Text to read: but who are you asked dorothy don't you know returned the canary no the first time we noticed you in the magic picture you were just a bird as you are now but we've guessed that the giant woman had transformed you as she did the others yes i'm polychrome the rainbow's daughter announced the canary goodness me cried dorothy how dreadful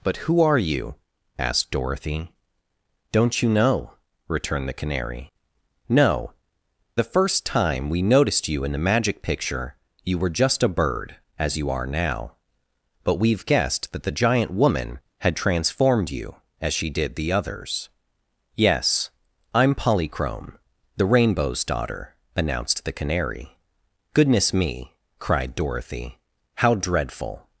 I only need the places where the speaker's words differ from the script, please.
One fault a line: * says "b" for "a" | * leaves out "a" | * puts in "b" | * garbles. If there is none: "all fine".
all fine